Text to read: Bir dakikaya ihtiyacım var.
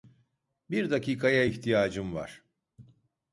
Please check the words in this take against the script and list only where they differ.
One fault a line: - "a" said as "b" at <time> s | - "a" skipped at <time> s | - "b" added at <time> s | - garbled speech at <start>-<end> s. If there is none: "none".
none